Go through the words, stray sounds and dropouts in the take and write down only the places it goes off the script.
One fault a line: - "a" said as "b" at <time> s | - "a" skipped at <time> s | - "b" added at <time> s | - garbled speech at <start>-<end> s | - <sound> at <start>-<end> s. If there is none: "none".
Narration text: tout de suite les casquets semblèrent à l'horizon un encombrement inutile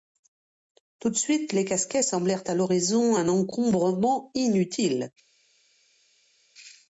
none